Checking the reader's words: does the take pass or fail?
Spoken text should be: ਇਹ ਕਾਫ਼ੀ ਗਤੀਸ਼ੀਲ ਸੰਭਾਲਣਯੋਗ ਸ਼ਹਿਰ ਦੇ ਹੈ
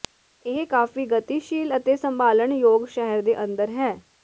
fail